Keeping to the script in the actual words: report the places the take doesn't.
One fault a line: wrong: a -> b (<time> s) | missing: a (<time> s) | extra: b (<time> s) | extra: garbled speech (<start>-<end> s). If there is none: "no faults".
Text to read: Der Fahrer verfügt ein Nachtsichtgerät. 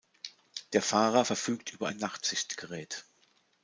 extra: über (1.7 s)